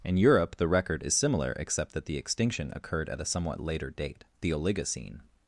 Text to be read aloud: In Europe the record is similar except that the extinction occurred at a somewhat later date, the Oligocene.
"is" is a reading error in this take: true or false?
false